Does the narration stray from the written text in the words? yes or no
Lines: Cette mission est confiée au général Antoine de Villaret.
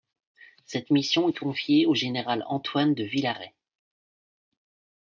no